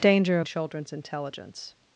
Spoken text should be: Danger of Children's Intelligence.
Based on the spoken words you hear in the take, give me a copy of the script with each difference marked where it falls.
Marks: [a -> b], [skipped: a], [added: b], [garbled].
Danger of Children's Intelligence.